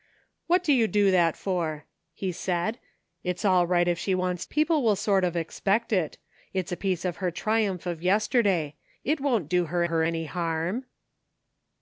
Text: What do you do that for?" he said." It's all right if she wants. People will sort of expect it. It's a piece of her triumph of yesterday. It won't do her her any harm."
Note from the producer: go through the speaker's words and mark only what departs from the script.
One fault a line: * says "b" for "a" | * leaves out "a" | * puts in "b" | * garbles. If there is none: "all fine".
all fine